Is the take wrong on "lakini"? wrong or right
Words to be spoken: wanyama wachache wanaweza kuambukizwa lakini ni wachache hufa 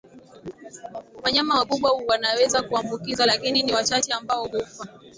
right